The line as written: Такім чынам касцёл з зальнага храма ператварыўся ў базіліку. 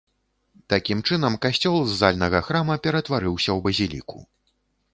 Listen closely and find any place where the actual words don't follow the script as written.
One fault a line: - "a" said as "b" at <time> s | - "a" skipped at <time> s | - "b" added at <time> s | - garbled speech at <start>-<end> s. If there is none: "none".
none